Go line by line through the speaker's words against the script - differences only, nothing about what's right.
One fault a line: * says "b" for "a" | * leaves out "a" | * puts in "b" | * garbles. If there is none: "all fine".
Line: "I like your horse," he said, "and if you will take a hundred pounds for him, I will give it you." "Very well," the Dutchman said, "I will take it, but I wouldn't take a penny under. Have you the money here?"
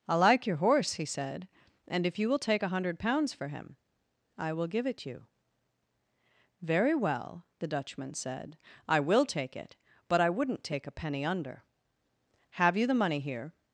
all fine